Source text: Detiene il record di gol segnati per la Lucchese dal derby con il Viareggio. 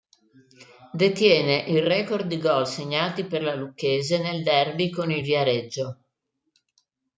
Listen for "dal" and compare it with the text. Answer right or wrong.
wrong